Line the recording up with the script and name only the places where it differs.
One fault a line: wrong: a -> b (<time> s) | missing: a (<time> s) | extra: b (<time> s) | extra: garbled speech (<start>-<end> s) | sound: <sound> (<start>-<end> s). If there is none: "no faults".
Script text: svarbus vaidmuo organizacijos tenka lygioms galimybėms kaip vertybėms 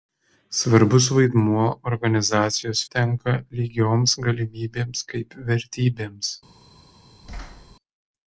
sound: thud (7.2-7.8 s)